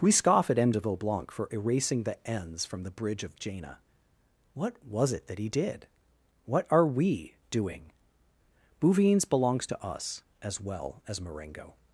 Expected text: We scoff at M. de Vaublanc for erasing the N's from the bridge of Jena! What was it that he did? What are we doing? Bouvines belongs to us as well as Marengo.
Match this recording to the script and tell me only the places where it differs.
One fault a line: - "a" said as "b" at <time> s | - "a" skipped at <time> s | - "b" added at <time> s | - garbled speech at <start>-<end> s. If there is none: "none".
none